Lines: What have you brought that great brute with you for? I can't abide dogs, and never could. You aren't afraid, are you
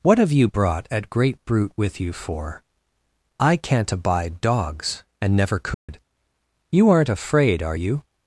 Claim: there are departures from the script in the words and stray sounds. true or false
true